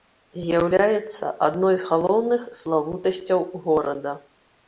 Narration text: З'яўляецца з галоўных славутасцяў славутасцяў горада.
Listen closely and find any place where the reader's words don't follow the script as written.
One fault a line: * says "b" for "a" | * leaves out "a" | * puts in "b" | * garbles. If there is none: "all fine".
* puts in "адной"
* leaves out "славутасцяў"